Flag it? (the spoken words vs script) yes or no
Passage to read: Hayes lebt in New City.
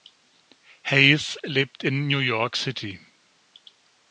yes